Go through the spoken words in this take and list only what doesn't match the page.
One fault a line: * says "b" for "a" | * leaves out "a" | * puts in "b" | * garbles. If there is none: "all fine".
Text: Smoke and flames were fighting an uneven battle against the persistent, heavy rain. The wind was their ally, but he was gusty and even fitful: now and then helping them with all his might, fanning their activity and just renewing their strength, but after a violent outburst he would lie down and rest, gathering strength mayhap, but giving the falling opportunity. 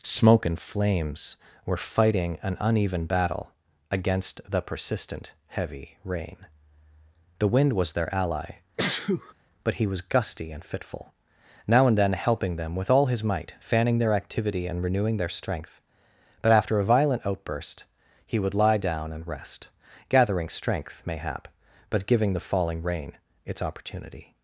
* leaves out "even"
* leaves out "just"
* puts in "rain its"